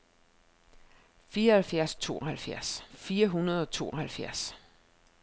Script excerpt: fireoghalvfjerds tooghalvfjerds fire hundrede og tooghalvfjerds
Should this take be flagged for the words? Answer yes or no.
no